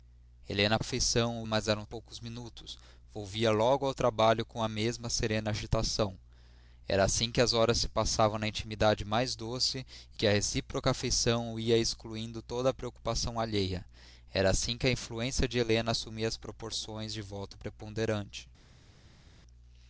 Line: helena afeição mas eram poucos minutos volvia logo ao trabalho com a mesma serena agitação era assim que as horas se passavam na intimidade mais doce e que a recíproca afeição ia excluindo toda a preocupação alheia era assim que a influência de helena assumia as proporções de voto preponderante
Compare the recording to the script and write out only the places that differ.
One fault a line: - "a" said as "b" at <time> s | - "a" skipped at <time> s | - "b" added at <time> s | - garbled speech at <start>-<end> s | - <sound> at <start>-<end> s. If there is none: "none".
none